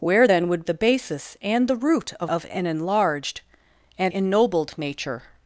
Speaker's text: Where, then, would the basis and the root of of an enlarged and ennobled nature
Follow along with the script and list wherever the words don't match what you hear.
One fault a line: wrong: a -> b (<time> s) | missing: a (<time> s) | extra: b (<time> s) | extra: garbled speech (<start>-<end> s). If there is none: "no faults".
no faults